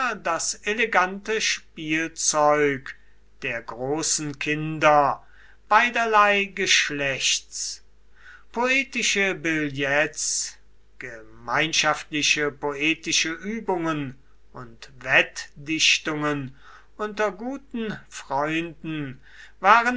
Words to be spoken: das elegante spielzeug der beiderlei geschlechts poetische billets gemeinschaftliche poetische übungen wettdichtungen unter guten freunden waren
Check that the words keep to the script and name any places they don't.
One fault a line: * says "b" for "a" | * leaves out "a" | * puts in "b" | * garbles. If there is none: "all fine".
* puts in "großen kinder"
* puts in "und"